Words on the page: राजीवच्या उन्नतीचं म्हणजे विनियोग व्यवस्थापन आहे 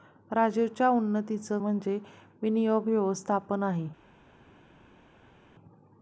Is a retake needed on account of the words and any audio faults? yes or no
no